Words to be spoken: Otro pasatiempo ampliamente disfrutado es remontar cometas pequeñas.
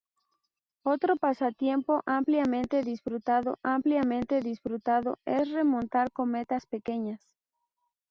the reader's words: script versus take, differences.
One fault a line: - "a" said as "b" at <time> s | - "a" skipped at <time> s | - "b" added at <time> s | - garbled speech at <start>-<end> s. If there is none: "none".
- "ampliamente disfrutado" added at 3.6 s